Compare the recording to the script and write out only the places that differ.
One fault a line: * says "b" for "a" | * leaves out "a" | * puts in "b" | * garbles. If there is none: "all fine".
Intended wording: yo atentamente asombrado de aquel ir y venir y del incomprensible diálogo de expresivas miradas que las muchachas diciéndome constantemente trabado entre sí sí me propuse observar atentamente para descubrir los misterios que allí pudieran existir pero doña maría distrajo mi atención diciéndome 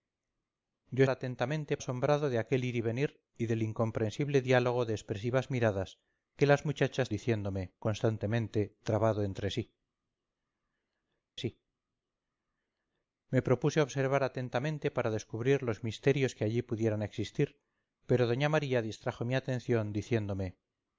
all fine